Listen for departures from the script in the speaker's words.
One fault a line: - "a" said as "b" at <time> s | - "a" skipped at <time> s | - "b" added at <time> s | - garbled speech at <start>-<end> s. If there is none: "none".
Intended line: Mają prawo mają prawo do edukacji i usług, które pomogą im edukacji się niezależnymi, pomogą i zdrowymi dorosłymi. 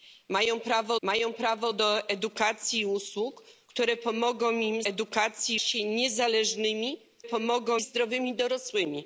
none